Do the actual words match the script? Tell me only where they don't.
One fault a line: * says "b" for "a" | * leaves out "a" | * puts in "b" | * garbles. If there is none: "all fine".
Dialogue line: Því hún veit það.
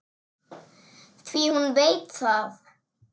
all fine